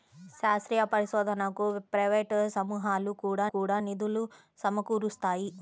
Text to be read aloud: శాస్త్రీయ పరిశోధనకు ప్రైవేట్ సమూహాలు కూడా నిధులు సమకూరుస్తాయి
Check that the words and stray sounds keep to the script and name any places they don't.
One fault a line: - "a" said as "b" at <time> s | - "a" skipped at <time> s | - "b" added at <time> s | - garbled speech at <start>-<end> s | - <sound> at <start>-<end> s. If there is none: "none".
- "కూడా" added at 3.5 s